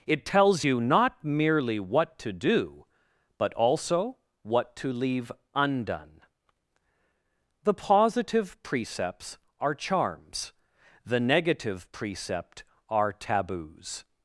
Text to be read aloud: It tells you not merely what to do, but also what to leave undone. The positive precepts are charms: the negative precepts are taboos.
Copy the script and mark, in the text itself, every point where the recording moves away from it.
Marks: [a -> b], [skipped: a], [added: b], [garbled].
It tells you not merely what to do, but also what to leave undone. The positive precepts are charms: the negative [precepts -> precept] are taboos.